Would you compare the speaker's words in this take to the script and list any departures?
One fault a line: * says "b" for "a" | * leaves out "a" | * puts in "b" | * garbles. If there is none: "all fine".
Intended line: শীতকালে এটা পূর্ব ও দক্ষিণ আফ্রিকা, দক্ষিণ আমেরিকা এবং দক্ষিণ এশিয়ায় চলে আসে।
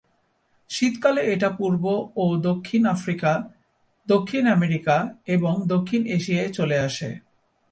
all fine